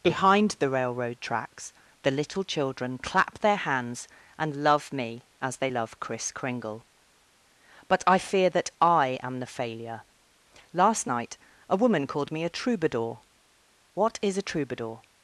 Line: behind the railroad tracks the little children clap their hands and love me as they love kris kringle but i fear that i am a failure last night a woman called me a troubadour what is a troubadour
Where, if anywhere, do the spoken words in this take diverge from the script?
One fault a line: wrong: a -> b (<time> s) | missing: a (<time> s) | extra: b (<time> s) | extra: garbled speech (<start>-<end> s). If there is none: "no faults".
wrong: a -> the (9.4 s)